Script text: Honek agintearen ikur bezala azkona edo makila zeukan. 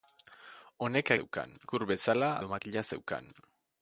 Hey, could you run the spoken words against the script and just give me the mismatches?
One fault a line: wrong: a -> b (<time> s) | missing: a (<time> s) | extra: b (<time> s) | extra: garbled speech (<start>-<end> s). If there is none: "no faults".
wrong: agintearen -> zeukan (1.2 s)
missing: azkona (2.3 s)